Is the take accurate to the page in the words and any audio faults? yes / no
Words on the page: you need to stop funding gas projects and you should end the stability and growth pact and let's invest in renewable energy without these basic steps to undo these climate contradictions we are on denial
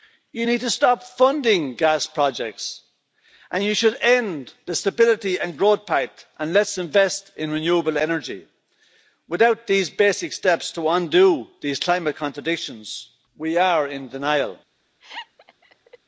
no